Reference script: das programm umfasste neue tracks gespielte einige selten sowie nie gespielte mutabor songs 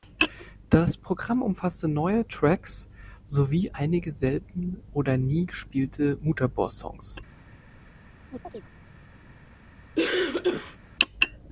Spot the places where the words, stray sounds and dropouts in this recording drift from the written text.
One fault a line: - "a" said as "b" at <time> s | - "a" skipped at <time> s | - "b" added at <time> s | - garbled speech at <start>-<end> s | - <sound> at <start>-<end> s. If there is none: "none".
- "gespielte" said as "sowie" at 3.3 s
- "sowie" said as "oder" at 4.9 s
- chirp at 8.3-8.7 s
- cough at 10.0-10.8 s